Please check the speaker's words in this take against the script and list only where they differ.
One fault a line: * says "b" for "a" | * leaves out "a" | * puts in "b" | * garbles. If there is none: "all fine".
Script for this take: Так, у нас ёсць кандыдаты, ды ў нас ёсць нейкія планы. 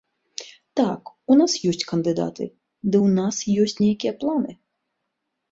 all fine